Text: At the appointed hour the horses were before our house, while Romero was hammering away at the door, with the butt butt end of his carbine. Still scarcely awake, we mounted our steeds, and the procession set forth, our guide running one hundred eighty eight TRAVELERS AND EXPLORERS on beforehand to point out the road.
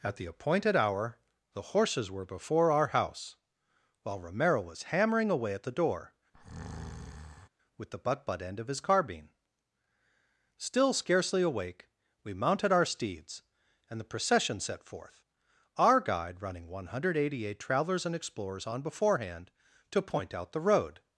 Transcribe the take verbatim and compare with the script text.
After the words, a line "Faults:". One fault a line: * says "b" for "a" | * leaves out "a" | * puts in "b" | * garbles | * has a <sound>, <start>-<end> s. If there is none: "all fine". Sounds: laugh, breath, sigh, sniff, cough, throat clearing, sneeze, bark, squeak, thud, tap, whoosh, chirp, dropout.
At the appointed hour the horses were before our house, while Romero was hammering away at the door, with the butt butt end of his carbine. Still scarcely awake, we mounted our steeds, and the procession set forth, our guide running one hundred eighty eight TRAVELERS AND EXPLORERS on beforehand to point out the road.
Faults:
* has a breath, 6.3-7.5 s